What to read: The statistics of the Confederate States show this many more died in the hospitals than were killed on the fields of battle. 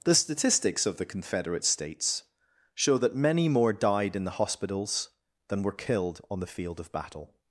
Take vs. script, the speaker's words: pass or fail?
fail